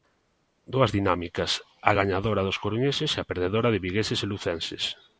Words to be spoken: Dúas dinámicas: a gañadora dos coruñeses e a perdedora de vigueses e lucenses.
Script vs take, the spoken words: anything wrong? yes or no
no